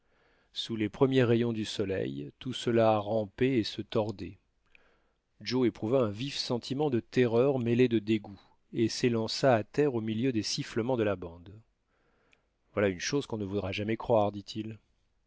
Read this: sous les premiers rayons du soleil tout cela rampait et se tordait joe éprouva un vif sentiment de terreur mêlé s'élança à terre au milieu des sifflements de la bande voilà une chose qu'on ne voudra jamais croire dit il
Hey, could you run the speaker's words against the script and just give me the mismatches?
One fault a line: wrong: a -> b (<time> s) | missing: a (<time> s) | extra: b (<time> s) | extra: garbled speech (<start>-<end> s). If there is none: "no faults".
extra: de dégoût et (7.9 s)